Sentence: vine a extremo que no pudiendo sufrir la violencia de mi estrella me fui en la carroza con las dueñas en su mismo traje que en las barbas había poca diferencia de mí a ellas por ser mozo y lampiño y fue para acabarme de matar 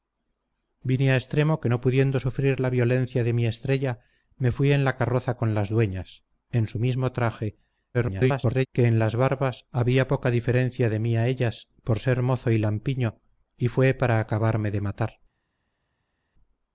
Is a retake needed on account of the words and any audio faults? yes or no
yes